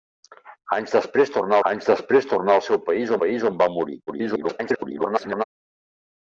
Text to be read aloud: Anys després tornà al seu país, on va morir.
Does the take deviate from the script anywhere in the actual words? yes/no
yes